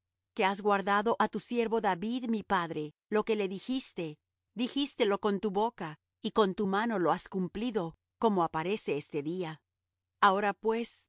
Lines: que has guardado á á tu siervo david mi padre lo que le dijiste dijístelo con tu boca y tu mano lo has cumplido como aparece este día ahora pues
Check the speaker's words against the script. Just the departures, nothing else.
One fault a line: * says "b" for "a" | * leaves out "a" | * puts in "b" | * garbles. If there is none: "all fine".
* leaves out "á"
* puts in "con"